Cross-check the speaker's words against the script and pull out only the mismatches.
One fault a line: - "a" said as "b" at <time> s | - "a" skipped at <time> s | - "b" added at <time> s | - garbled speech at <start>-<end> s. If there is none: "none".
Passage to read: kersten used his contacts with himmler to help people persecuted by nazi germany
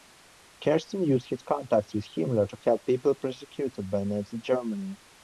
none